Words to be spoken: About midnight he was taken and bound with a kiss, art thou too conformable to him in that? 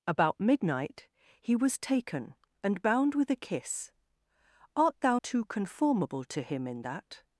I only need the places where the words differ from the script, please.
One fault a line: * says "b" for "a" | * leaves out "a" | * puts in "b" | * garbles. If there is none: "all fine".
all fine